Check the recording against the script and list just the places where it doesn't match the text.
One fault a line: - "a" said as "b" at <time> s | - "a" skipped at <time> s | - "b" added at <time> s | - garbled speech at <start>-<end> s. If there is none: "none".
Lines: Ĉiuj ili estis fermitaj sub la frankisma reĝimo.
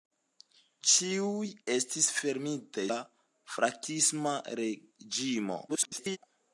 - "ili" skipped at 1.5 s
- "sub" skipped at 2.9 s
- garbled speech at 5.7-6.2 s